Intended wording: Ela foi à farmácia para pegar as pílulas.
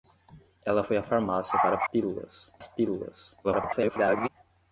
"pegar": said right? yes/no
no